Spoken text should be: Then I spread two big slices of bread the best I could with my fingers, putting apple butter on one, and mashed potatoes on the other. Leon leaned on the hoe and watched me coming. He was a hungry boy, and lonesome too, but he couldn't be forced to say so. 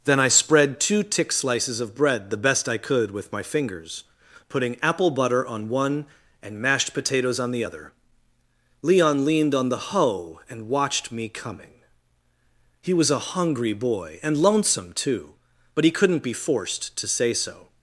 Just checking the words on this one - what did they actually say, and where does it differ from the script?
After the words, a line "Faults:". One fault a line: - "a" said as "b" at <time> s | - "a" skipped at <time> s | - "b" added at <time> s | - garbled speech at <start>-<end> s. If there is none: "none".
Then I spread two tick slices of bread the best I could with my fingers, putting apple butter on one, and mashed potatoes on the other. Leon leaned on the hoe and watched me coming. He was a hungry boy, and lonesome too, but he couldn't be forced to say so.
Faults:
- "big" said as "tick" at 1.0 s